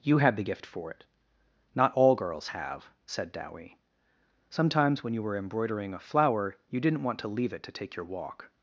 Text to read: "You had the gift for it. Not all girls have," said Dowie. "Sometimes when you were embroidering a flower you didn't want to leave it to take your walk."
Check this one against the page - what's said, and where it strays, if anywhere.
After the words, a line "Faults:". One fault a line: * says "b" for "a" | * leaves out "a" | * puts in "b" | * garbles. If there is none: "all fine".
"You had the gift for it. Not all girls have," said Dowie. "Sometimes when you were embroidering a flower you didn't want to leave it to take your walk."
Faults:
all fine